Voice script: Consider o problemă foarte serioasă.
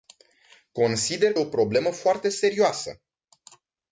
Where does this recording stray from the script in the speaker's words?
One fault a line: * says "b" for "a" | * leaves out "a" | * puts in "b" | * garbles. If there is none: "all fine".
all fine